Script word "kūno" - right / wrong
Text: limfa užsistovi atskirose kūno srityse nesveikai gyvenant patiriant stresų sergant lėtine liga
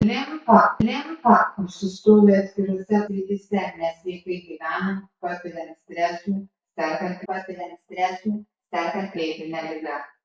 wrong